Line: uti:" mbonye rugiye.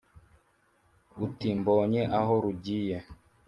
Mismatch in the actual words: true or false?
true